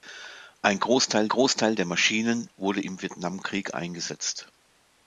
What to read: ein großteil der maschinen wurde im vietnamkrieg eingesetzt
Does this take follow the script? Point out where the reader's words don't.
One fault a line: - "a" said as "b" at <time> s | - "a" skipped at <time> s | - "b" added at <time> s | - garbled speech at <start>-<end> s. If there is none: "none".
- "großteil" added at 1.3 s